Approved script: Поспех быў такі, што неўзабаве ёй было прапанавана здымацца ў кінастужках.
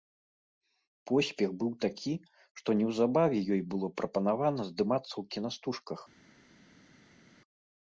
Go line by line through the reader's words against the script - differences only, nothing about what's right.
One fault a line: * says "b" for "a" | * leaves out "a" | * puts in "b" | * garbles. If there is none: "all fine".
all fine